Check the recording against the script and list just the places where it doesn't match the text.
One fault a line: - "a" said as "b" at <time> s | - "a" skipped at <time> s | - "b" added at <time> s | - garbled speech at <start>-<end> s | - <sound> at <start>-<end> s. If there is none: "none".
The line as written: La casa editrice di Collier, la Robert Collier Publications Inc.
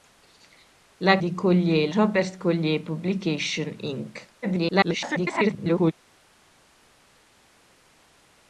- "casa editrice" skipped at 1.2 s
- "la" skipped at 1.9 s
- garbled speech at 4.4-5.9 s